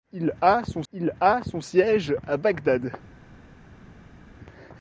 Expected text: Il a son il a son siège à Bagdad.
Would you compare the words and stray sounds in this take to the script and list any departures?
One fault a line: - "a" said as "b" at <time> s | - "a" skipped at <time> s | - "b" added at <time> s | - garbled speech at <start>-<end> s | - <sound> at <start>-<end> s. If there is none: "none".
none